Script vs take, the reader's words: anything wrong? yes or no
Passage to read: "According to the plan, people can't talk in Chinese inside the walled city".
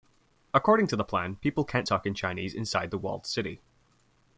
no